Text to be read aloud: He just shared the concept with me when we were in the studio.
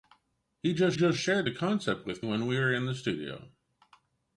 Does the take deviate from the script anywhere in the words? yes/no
yes